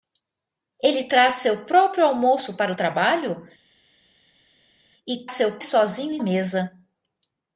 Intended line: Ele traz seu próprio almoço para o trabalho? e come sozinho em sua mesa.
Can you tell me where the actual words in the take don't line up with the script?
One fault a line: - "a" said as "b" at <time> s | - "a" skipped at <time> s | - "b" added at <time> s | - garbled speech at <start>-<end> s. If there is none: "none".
- "come" said as "seu" at 5.3 s
- "sua" skipped at 6.2 s